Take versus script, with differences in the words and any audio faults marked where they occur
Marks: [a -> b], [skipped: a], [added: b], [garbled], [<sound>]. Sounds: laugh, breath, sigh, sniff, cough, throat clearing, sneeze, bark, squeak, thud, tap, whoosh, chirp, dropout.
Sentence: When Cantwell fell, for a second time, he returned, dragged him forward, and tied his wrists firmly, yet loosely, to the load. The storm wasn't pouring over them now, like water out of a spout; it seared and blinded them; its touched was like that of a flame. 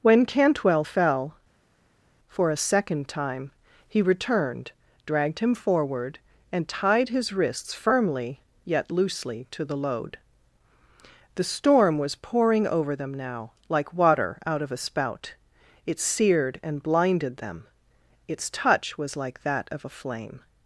When Cantwell fell, for a second time, he returned, dragged him forward, and tied his wrists firmly, yet loosely, to the load. The storm [wasn't -> was] pouring over them now, like water out of a spout; it seared and blinded them; its [touched -> touch] was like that of a flame.